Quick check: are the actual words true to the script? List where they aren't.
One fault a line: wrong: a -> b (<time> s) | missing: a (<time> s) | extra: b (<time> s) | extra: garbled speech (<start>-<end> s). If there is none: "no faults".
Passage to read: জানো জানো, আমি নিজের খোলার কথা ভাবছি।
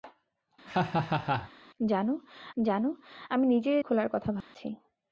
no faults